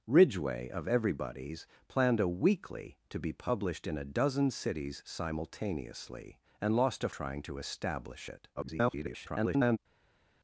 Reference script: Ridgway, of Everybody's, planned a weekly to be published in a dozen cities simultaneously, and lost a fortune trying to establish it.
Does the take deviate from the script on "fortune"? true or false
true